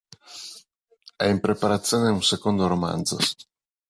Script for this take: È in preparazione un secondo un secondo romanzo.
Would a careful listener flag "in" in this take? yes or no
no